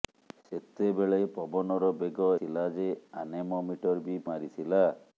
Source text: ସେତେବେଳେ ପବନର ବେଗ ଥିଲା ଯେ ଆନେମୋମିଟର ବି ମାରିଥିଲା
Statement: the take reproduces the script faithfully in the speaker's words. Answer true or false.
true